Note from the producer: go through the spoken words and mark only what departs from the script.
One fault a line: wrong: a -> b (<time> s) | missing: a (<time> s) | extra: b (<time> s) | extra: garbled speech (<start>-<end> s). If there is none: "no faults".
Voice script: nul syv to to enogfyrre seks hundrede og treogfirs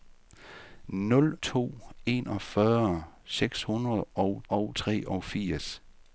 missing: syv (1.4 s)
missing: to (1.7 s)
extra: og (4.5 s)